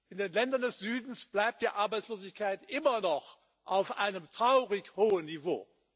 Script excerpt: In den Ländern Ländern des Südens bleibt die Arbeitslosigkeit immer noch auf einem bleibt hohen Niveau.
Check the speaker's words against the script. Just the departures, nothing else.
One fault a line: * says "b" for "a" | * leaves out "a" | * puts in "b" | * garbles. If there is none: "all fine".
* leaves out "Ländern"
* says "traurig" for "bleibt"